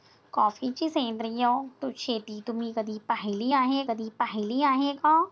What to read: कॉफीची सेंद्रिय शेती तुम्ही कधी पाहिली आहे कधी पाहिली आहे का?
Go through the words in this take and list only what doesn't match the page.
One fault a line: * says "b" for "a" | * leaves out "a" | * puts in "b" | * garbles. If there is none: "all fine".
all fine